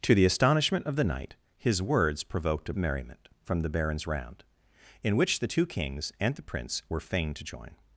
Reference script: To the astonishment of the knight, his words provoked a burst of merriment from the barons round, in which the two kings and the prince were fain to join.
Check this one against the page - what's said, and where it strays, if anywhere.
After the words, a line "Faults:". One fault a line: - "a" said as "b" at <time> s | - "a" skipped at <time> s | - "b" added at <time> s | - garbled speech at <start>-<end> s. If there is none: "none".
To the astonishment of the knight, his words provoked a merriment from the barons round, in which the two kings and the prince were fain to join.
Faults:
- "burst of" skipped at 2.7 s